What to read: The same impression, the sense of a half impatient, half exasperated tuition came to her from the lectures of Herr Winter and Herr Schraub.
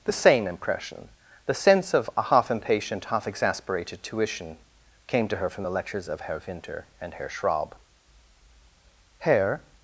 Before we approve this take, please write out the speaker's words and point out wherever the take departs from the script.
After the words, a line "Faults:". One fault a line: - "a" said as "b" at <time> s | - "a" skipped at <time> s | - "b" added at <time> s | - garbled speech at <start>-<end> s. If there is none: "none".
The same impression, the sense of a half impatient, half exasperated tuition came to her from the lectures of Herr Winter and Herr Schraub. Herr
Faults:
- "Herr" added at 9.2 s